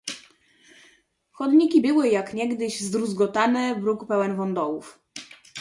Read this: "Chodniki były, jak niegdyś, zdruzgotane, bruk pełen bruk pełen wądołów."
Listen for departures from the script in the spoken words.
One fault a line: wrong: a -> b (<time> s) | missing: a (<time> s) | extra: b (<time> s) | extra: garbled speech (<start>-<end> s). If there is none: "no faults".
missing: bruk pełen (4.4 s)